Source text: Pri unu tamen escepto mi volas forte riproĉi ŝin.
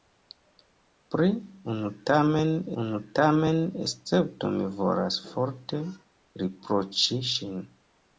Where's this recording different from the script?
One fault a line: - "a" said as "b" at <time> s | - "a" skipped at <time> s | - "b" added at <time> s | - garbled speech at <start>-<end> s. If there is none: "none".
- "unu tamen" added at 2.8 s